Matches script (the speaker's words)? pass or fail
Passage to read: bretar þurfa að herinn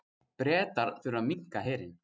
fail